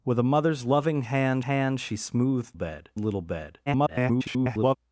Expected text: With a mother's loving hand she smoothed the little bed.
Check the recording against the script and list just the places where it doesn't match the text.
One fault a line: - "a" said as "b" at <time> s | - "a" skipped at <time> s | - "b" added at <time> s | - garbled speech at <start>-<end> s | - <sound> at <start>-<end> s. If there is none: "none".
- "hand" added at 1.4 s
- "the" said as "bed" at 2.5 s
- garbled speech at 3.7-4.8 s